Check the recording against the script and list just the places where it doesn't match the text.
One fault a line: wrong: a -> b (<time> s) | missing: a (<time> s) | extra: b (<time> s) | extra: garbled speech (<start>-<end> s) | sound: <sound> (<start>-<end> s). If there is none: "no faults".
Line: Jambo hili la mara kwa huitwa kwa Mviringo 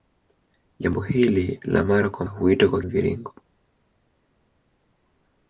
no faults